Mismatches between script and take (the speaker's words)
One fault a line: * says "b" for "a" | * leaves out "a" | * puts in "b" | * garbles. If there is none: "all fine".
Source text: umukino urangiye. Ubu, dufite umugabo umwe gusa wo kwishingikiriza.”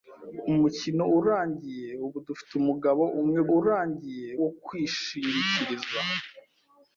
* says "urangiye" for "gusa"